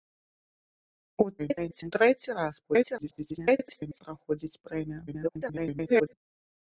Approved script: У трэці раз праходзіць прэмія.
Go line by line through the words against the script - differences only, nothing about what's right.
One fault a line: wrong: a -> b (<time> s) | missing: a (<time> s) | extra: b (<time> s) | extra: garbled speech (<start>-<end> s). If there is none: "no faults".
extra: garbled speech (1.4-1.9 s)
extra: garbled speech (2.6-4.0 s)
extra: garbled speech (5.1-6.1 s)